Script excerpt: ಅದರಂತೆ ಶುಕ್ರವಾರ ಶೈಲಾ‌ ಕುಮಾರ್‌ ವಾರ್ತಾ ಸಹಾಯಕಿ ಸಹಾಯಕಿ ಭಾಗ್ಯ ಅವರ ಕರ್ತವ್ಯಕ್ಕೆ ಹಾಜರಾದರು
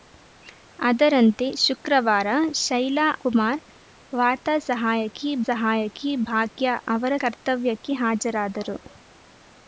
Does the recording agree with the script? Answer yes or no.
yes